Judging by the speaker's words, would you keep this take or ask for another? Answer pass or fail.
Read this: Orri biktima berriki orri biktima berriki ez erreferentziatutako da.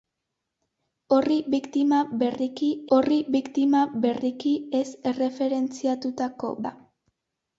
pass